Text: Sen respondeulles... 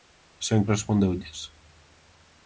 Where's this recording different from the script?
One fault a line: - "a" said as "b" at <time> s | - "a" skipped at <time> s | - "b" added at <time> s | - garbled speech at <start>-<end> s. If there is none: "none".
none